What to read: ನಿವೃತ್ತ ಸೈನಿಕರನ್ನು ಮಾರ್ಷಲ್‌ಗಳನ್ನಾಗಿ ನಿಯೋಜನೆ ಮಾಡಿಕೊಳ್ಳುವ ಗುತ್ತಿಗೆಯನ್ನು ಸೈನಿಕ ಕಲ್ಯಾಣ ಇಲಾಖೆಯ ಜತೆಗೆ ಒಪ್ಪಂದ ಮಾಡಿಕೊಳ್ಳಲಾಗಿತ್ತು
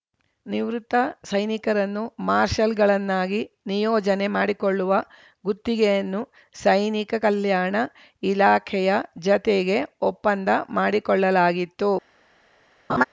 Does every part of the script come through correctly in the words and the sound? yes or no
no